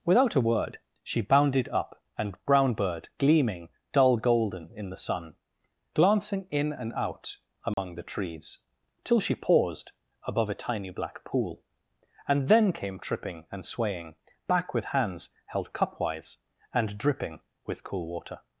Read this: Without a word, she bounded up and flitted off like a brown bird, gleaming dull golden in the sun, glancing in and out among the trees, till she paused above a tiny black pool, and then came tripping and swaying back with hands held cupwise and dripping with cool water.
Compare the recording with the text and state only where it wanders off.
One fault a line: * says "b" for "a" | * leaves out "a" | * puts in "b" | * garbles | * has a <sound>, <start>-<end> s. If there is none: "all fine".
* leaves out "flitted off like a"
* has a dropout, 7.7-7.8 s